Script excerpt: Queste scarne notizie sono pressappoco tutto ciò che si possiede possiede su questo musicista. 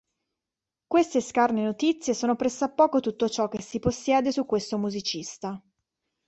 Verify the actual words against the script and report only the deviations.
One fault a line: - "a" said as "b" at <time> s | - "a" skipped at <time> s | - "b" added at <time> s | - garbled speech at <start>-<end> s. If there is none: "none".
- "possiede" skipped at 4.3 s